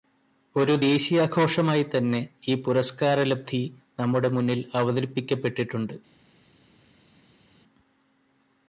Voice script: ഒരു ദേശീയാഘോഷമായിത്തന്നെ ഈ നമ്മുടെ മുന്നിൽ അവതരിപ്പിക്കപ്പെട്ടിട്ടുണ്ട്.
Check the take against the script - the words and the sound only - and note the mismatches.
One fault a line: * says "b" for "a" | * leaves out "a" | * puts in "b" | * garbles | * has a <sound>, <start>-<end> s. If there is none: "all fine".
* puts in "പുരസ്കാരലബ്ധി"